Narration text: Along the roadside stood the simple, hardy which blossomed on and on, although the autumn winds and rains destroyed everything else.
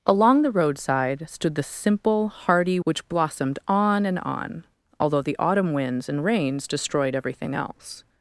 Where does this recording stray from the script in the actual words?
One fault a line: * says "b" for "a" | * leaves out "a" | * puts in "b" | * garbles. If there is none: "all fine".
all fine